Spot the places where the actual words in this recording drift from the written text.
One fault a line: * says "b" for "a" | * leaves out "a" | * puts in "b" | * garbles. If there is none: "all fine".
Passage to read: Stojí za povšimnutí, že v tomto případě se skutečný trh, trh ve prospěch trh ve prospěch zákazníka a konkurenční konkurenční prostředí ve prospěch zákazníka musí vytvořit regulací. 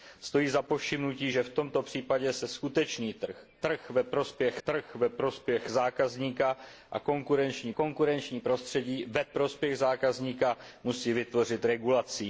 all fine